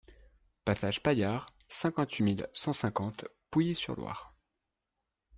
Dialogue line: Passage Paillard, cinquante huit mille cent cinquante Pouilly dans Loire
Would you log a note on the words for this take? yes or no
yes